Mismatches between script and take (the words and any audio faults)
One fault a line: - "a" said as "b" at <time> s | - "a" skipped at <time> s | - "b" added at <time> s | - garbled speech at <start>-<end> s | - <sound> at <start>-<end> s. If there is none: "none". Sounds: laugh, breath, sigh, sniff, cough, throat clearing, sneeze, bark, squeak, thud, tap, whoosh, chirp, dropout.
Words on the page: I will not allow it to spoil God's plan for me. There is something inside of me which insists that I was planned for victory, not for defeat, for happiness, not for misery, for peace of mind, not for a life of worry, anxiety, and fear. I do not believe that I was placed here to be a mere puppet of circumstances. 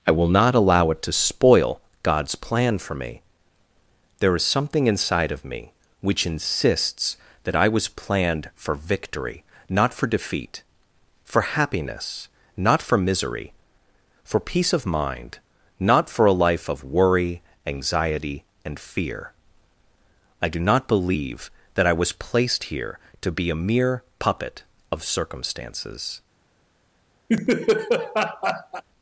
- laugh at 27.3-28.8 s